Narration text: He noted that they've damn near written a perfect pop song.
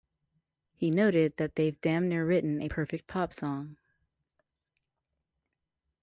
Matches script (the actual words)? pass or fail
pass